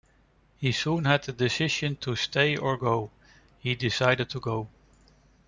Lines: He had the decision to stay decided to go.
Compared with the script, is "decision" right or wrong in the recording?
right